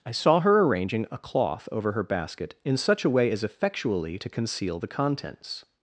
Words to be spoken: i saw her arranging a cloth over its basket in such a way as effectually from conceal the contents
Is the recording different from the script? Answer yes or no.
yes